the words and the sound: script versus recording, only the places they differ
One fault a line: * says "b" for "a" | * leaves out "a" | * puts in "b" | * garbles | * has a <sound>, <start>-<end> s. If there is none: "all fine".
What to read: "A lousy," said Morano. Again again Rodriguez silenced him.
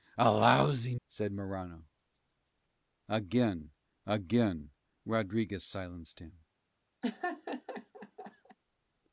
* has a laugh, 7.0-8.6 s